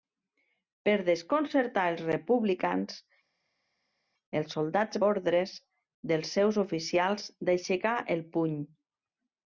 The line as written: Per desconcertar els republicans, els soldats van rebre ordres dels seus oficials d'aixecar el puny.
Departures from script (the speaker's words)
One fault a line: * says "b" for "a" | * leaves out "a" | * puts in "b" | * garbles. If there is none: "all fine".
* leaves out "van rebre"